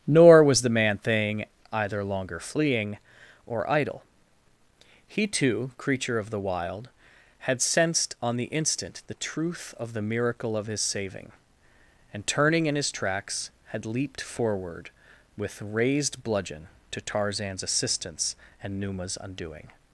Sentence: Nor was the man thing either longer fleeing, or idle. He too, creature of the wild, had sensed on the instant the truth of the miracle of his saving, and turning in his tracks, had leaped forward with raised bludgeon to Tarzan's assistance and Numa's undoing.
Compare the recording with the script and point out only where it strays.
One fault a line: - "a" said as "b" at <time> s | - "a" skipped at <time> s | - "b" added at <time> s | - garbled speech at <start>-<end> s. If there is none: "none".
none